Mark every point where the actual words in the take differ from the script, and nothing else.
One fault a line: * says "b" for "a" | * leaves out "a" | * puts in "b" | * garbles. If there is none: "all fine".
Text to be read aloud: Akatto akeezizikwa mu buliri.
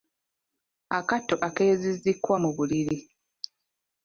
all fine